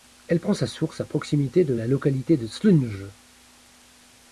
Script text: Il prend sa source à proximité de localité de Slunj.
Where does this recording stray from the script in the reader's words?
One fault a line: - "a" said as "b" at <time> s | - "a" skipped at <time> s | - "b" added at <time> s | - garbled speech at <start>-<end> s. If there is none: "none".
- "Il" said as "Elle" at 0.3 s
- "la" added at 1.7 s